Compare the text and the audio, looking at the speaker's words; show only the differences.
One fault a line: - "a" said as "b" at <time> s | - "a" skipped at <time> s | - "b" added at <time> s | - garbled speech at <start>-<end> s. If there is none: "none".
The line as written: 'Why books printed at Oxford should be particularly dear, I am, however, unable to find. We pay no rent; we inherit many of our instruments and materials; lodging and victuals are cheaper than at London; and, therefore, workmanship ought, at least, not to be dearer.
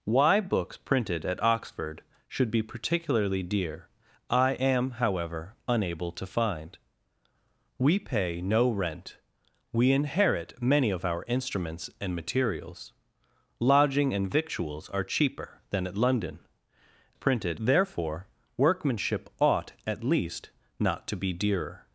- "and" said as "printed" at 17.1 s